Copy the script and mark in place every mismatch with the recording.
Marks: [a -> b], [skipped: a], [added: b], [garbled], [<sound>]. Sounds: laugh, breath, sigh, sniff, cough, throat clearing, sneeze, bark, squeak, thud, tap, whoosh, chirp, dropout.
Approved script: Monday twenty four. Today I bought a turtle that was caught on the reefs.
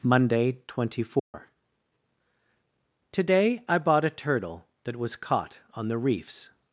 Monday twenty four. [dropout] Today I bought a turtle that was caught on the reefs.